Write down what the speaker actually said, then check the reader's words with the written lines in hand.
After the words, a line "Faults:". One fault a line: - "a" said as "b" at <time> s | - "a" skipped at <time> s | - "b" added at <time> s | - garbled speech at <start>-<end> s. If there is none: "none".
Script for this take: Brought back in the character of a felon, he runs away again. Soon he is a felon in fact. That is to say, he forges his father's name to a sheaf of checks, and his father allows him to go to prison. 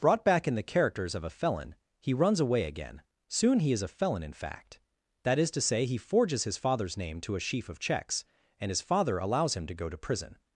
Brought back in the characters of a felon, he runs away again. Soon he is a felon in fact. That is to say, he forges his father's name to a sheaf of checks, and his father allows him to go to prison.
Faults:
- "character" said as "characters" at 0.6 s